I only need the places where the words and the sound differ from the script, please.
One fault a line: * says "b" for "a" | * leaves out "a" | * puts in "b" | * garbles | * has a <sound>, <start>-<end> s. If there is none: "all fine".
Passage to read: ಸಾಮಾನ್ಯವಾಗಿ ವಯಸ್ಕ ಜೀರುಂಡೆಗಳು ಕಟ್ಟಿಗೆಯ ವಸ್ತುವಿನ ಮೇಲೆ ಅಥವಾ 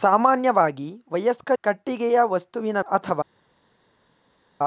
* leaves out "ಜೀರುಂಡೆಗಳು"
* leaves out "ಮೇಲೆ"